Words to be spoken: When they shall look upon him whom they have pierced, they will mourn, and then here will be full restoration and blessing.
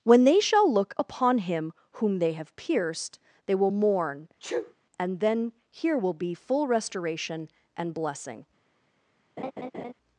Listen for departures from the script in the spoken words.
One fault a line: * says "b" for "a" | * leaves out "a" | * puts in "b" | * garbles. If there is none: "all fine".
all fine